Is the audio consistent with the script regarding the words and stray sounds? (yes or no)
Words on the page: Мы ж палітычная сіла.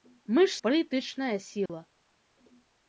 no